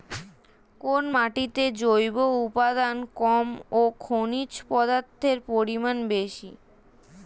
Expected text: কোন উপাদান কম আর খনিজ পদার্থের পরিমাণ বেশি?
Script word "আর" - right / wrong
wrong